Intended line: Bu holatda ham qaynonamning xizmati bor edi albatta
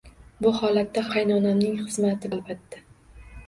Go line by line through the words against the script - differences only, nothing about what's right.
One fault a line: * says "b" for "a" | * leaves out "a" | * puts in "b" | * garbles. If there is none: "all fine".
* leaves out "ham"
* leaves out "bor edi"